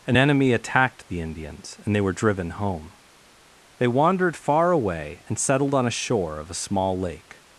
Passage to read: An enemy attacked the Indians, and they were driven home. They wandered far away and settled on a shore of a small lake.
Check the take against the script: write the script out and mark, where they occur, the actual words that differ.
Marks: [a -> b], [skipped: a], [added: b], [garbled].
An enemy attacked the Indians, and they were driven home. They wandered far away and settled on a shore of a small lake.